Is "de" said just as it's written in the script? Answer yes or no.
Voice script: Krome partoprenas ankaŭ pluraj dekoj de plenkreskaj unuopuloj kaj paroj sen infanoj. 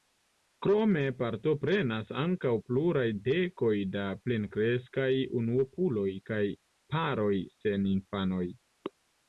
no